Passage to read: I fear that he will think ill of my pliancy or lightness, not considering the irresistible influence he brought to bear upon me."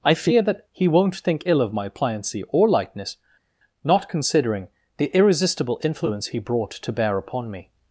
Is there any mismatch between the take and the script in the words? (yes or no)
yes